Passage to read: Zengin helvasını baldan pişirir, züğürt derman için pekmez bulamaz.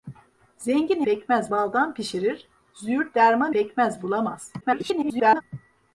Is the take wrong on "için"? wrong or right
wrong